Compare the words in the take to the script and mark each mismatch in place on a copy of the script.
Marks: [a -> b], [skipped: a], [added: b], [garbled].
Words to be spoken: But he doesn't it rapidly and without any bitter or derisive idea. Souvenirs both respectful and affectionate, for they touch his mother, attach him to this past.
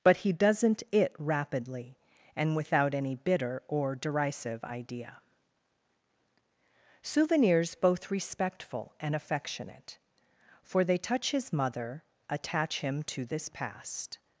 But he doesn't it rapidly and without any bitter or derisive idea. Souvenirs both respectful and affectionate, for they touch his mother, attach him to this past.